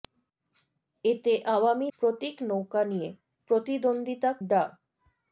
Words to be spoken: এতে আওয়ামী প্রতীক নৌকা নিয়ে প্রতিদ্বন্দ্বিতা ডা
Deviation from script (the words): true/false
false